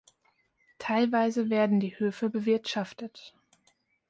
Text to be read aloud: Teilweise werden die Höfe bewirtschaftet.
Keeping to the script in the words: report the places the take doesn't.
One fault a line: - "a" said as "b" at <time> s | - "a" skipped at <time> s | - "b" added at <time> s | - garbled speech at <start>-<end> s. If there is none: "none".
none